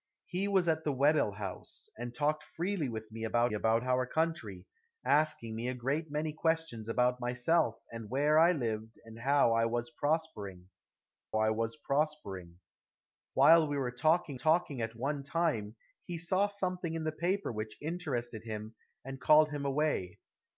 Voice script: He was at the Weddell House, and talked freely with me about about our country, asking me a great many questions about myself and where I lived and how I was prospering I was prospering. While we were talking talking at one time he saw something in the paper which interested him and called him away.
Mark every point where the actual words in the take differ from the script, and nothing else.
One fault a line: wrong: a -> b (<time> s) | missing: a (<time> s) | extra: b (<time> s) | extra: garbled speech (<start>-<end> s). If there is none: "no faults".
no faults